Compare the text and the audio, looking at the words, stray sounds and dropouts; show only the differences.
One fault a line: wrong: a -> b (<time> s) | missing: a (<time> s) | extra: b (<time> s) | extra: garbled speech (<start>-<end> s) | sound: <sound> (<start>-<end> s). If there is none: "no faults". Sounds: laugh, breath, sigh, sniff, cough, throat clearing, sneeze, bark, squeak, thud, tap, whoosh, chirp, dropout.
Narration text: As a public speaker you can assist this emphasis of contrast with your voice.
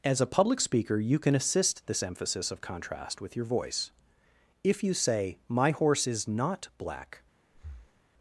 extra: If you say My horse is not black (4.6 s)
sound: breath (7.5-8.0 s)